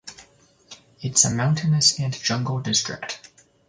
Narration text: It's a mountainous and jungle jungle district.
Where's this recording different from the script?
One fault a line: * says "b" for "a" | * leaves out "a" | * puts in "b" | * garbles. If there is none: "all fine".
* leaves out "jungle"